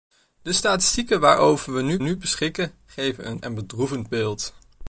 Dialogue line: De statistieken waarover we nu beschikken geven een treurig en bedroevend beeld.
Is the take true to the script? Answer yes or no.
no